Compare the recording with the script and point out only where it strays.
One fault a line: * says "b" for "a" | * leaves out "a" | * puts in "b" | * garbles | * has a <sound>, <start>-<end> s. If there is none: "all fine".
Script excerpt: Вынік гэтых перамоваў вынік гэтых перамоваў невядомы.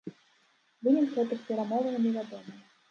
* leaves out "вынік гэтых перамоваў"